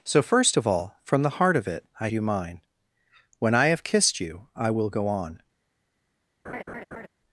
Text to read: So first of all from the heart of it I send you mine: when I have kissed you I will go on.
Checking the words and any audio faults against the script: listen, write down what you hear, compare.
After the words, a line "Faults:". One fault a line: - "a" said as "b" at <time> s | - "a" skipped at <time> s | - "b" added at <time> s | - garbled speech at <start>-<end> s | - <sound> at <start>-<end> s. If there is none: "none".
So first of all from the heart of it I you mine: when I have kissed you I will go on.
Faults:
- "send" skipped at 2.1 s
- laugh at 6.4-7.1 s